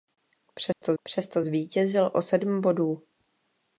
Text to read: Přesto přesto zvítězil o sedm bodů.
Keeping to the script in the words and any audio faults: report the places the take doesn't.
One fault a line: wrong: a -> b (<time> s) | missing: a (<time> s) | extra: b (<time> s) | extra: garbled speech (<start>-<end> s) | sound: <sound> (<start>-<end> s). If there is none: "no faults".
sound: dropout (0.7-0.8 s)